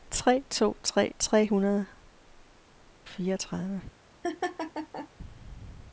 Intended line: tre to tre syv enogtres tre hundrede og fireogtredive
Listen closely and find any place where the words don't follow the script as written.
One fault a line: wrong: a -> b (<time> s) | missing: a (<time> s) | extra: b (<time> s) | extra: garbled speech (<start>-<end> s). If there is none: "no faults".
missing: syv enogtres (1.1 s)
missing: og (1.9 s)